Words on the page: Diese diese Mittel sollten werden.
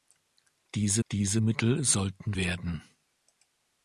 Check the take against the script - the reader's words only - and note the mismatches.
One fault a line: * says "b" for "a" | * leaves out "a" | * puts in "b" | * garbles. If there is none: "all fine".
all fine